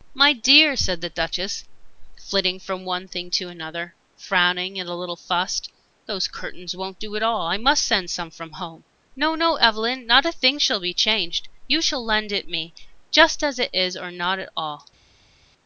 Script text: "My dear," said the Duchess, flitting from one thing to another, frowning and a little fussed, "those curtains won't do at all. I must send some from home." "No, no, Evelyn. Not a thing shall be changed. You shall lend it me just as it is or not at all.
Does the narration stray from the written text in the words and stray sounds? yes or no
no